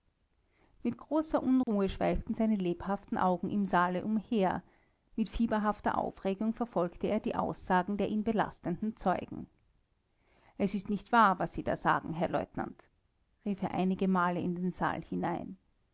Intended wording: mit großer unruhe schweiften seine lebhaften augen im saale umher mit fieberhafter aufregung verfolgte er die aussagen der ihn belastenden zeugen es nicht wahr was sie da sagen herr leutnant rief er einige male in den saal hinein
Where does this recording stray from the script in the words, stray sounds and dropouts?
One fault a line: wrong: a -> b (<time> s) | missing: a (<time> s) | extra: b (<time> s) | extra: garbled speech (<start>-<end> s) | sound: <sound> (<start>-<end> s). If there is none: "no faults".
sound: dropout (1.6-1.7 s)
extra: ist (10.7 s)